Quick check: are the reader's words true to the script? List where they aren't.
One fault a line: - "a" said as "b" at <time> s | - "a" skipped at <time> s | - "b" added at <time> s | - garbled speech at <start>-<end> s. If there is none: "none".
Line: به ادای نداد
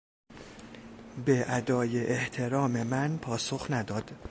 - "احترام من پاسخ" added at 2.1 s